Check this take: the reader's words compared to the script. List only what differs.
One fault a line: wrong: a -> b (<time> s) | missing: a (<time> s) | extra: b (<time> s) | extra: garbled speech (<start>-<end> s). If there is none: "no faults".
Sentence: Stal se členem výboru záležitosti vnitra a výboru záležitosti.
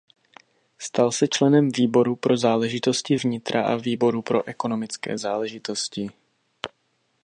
extra: pro (2.1 s)
extra: pro ekonomické (4.2 s)